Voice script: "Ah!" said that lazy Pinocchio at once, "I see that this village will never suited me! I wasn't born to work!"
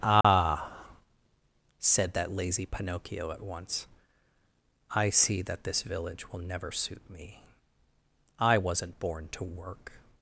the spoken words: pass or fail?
fail